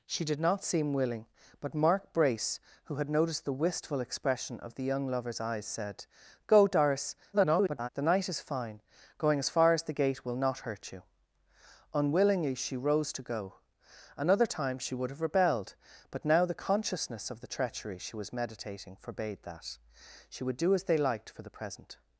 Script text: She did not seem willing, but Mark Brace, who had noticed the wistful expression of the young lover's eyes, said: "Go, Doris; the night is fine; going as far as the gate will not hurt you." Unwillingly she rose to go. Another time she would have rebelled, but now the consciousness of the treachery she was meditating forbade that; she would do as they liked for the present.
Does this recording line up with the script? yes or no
no